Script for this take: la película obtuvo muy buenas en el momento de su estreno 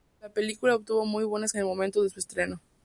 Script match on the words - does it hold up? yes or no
yes